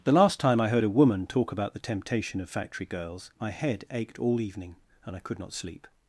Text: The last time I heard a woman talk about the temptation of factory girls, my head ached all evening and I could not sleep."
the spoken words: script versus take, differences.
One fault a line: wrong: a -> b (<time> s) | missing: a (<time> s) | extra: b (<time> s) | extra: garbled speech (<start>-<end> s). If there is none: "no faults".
no faults